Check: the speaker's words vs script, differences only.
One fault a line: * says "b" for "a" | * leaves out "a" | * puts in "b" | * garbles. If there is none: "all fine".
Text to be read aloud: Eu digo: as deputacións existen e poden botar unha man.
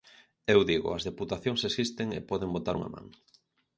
all fine